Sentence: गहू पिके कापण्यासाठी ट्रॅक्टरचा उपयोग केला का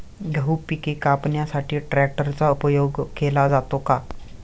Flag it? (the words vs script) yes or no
yes